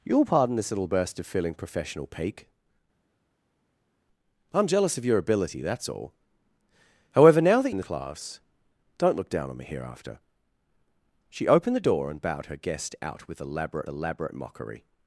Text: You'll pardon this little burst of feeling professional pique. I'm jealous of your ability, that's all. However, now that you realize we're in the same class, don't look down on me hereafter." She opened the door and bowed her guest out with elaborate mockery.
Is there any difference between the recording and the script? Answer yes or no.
yes